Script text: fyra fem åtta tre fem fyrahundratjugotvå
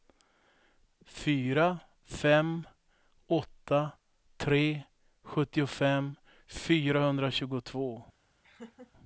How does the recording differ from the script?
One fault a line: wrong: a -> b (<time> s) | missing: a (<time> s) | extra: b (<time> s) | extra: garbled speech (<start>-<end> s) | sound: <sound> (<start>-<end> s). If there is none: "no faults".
wrong: fem -> sjuttiofem (5.2 s)
sound: laugh (8.4-8.9 s)